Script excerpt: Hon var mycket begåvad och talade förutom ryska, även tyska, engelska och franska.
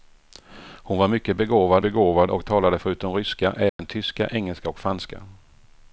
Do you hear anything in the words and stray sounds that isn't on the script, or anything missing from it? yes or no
yes